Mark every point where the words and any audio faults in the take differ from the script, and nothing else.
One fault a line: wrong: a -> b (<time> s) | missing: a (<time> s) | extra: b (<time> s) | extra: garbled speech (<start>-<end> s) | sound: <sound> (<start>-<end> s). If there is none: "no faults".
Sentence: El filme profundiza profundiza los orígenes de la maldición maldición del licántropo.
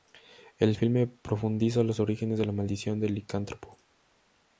missing: profundiza (1.8 s)
missing: maldición (3.0 s)